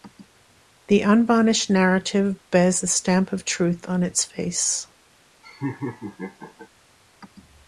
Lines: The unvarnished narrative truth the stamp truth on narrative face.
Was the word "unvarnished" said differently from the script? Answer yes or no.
no